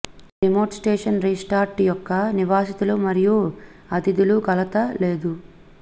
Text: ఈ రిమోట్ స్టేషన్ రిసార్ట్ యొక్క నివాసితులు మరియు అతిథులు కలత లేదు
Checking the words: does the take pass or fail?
pass